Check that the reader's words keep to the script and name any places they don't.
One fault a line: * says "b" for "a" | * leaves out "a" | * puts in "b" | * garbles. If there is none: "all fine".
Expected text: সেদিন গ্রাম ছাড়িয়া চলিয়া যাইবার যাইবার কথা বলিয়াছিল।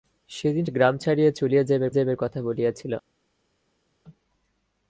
all fine